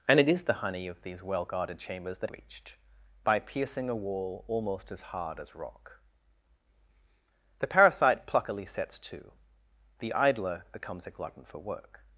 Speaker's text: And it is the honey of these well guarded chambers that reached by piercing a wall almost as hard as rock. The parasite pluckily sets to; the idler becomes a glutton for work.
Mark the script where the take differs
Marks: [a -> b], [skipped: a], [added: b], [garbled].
And it is the honey of these well guarded chambers that reached by piercing a wall almost as hard as rock. The parasite pluckily sets to; the idler becomes a glutton for work.